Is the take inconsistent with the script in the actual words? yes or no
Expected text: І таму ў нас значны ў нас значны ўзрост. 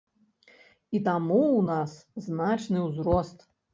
yes